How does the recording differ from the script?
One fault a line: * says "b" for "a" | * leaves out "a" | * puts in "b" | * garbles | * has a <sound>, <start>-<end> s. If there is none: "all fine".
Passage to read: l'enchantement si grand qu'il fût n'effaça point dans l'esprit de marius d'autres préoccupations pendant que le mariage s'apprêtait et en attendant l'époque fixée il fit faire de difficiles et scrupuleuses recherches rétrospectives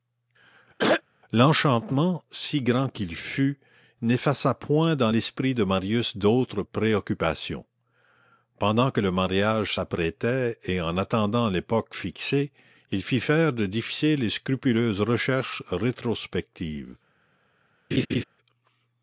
* has a throat clearing, 0.8-1.0 s
* has a laugh, 17.9-18.2 s